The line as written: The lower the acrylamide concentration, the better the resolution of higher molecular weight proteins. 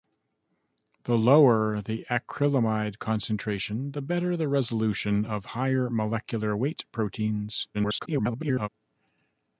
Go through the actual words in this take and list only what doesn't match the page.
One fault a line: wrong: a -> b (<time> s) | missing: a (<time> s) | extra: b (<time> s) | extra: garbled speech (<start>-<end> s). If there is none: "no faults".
extra: garbled speech (7.7-8.7 s)